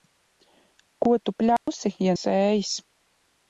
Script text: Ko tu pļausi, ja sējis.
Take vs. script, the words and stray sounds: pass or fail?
fail